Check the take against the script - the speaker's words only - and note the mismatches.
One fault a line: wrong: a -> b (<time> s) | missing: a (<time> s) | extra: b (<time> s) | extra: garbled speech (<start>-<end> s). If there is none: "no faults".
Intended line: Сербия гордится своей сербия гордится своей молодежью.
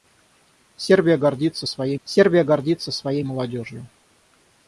no faults